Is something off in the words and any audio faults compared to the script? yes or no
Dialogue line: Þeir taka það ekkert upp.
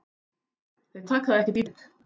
no